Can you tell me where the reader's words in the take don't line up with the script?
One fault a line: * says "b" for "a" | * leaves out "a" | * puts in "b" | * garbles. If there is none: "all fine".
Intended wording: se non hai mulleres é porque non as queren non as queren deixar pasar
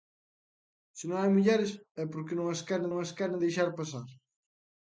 all fine